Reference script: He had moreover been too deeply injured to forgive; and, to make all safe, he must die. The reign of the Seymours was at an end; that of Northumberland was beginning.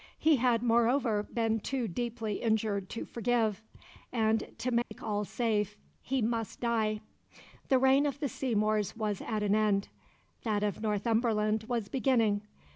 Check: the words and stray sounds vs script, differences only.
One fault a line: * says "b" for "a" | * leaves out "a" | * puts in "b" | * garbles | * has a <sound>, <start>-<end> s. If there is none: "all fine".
* has a dropout, 4.8-4.9 s